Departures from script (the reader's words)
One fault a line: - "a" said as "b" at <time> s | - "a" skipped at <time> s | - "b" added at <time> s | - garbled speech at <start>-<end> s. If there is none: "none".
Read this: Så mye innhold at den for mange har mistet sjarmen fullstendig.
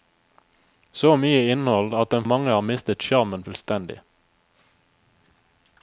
- "for" skipped at 2.2 s